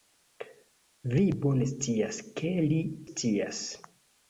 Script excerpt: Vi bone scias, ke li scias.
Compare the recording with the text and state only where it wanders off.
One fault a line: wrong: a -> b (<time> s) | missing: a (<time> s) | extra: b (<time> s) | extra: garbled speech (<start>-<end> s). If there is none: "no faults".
no faults